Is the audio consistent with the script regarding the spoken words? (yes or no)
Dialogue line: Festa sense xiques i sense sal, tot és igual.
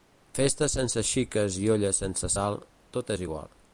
no